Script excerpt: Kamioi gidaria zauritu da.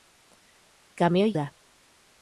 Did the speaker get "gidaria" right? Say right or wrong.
wrong